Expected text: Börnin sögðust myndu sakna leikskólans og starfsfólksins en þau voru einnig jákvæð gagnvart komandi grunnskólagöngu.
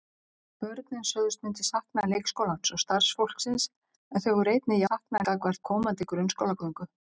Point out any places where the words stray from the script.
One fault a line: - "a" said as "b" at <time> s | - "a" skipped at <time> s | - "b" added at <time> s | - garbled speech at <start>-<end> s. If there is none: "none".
- "jákvæð" said as "sakna" at 4.8 s